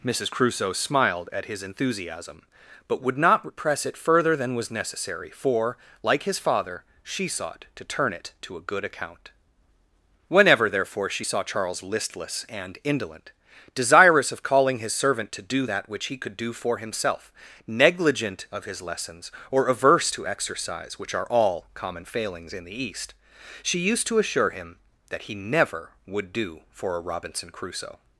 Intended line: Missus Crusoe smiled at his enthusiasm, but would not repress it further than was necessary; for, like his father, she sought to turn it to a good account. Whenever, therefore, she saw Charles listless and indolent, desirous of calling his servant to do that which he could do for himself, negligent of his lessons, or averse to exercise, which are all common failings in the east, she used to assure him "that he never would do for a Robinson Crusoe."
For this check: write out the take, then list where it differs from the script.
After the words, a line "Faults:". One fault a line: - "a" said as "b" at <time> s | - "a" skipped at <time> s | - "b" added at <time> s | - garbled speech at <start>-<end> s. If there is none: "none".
Missus Crusoe smiled at his enthusiasm, but would not repress it further than was necessary; for, like his father, she sought to turn it to a good account. Whenever, therefore, she saw Charles listless and indolent, desirous of calling his servant to do that which he could do for himself, negligent of his lessons, or averse to exercise, which are all common failings in the east, she used to assure him "that he never would do for a Robinson Crusoe."
Faults:
none